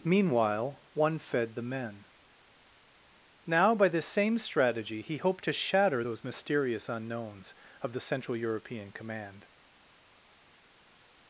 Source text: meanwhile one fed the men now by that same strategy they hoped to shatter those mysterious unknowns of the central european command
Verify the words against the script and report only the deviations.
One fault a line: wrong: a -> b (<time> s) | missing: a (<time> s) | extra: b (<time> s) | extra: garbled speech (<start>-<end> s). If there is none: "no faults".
wrong: that -> this (3.9 s)
wrong: they -> he (5.0 s)